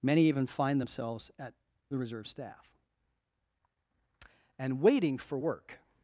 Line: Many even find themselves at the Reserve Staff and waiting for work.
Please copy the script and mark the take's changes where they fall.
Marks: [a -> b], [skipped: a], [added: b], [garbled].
Many even find themselves at the Reserve Staff and waiting for work.